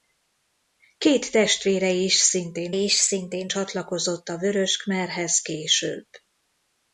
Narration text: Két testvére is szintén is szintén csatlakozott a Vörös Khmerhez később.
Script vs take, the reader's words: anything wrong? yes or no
no